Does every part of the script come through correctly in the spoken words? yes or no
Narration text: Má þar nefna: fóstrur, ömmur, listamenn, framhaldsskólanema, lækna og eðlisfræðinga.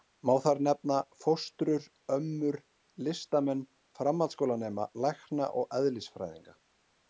yes